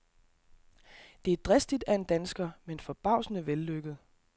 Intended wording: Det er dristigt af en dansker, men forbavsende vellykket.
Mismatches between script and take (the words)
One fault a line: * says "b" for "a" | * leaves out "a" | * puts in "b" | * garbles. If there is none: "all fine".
all fine